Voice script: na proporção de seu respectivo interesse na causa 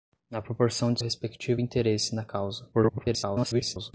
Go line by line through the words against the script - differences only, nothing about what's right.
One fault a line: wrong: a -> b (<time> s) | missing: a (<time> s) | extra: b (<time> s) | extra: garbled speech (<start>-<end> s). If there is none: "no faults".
missing: seu (1.0 s)
extra: garbled speech (2.7-3.9 s)